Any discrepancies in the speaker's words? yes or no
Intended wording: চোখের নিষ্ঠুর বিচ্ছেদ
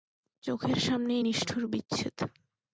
yes